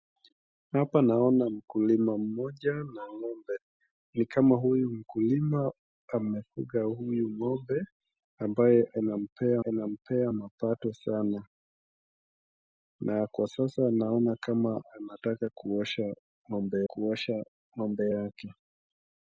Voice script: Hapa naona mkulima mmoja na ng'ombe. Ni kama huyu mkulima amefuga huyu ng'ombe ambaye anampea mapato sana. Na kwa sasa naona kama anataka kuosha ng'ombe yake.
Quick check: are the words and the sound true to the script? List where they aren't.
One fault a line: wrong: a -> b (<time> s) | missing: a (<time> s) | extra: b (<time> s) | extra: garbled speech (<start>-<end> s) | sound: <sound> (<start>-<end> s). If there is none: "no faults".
extra: anampea (9.6 s)
extra: kuosha ng'ombe (16.9 s)